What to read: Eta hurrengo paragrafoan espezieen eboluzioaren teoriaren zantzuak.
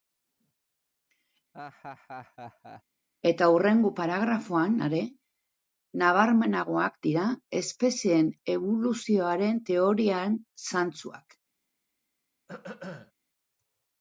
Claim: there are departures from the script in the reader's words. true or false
true